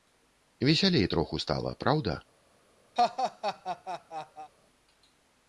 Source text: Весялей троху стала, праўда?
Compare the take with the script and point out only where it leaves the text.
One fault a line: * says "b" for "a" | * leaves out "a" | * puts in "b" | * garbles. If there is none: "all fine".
all fine